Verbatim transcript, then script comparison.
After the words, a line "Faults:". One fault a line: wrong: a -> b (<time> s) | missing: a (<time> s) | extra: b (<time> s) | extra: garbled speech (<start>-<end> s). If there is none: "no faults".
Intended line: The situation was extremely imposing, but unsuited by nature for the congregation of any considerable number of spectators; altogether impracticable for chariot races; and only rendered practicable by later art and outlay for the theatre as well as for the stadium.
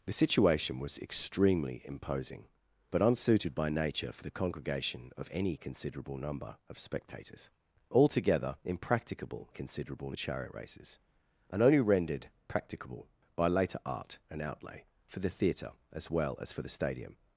The situation was extremely imposing, but unsuited by nature for the congregation of any considerable number of spectators; altogether impracticable considerable chariot races; and only rendered practicable by later art and outlay for the theatre as well as for the stadium.
Faults:
wrong: for -> considerable (9.5 s)